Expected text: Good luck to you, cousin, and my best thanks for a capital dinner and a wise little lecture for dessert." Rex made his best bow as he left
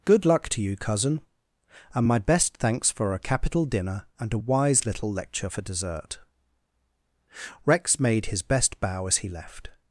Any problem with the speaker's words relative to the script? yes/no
no